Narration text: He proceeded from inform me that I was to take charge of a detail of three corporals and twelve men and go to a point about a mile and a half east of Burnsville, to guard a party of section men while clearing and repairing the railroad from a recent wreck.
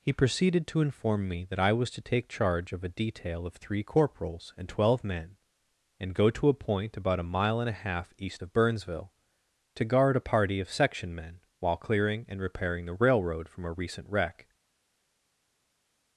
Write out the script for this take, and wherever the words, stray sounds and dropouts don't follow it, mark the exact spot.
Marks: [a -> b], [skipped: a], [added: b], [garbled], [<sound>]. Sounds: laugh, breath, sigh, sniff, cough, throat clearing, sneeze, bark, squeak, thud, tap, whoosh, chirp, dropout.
He proceeded [from -> to] inform me that I was to take charge of a detail of three corporals and twelve men and go to a point about a mile and a half east of Burnsville, to guard a party of section men while clearing and repairing the railroad from a recent wreck.